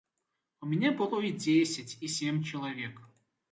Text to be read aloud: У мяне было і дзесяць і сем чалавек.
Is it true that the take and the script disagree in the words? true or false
false